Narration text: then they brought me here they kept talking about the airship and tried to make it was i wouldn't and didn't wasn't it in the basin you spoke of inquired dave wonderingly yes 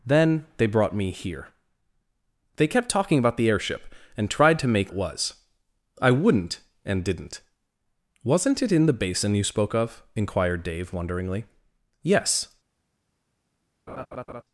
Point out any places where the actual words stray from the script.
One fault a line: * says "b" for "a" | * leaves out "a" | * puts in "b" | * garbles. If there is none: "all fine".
all fine